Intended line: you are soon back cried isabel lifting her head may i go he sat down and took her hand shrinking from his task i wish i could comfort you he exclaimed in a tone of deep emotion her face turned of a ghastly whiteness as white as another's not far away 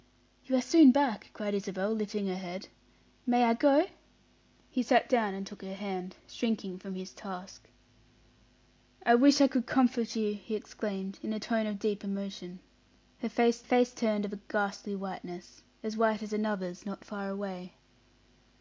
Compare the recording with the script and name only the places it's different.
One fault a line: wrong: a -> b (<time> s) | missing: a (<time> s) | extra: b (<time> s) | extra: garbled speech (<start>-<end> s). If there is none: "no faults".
extra: face (13.6 s)